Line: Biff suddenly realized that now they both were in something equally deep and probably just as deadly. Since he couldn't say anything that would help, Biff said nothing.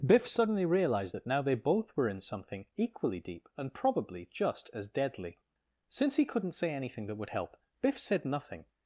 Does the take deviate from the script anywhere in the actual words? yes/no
no